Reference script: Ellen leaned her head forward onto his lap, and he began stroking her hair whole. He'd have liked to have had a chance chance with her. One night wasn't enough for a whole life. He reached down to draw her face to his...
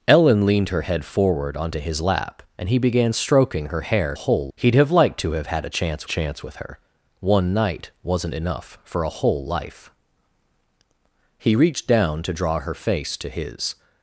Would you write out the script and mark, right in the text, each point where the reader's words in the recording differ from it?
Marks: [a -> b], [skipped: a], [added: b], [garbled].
Ellen leaned her head forward onto his lap, and he began stroking her hair whole. He'd have liked to have had a chance chance with her. One night wasn't enough for a whole life. He reached down to draw her face to his...